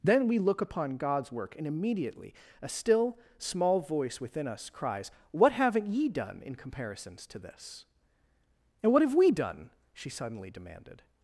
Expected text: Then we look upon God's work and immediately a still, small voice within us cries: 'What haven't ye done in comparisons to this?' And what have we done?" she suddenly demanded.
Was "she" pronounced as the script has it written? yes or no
yes